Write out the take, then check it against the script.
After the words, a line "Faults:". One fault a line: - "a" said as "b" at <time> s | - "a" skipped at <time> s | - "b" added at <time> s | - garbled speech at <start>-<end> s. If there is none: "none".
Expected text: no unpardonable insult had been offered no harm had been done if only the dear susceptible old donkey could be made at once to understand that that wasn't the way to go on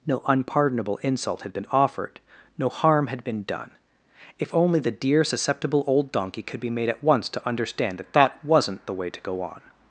no unpardonable insult had been offered no harm had been done if only the dear susceptible old donkey could be made at once to understand that that wasn't the way to go on
Faults:
none